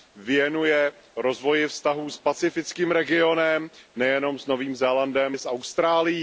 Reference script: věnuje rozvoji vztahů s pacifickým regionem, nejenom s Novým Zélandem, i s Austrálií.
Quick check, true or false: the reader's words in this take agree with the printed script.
true